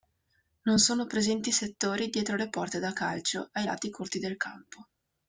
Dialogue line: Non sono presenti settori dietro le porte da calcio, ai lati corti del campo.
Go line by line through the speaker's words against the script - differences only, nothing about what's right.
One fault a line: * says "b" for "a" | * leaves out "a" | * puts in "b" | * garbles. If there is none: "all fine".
all fine